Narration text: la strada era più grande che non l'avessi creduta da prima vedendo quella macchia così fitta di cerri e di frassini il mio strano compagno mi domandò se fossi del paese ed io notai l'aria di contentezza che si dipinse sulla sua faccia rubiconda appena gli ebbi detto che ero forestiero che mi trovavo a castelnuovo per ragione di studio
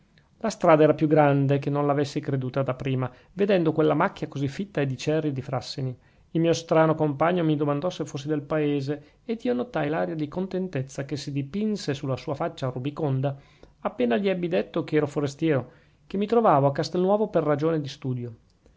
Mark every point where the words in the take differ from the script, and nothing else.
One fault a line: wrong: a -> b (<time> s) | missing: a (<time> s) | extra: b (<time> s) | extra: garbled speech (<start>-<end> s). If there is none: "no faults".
no faults